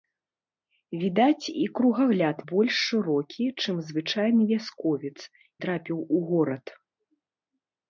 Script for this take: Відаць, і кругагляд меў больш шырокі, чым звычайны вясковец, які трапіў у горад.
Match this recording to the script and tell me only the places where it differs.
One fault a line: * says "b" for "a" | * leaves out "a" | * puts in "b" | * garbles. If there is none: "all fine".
* leaves out "меў"
* leaves out "які"